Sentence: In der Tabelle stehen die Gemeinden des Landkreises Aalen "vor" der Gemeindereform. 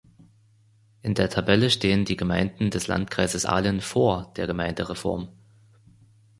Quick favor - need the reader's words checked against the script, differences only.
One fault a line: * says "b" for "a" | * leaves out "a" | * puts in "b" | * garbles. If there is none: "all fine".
all fine